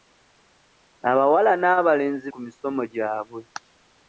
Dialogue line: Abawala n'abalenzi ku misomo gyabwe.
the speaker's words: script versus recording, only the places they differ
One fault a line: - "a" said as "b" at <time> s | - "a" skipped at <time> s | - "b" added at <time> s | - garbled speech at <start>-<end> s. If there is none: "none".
none